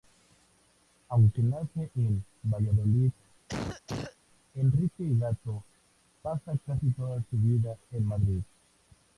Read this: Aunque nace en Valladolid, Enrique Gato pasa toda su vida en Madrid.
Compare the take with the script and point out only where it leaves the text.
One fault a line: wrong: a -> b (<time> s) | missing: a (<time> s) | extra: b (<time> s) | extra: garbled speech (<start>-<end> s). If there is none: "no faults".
extra: casi (6.7 s)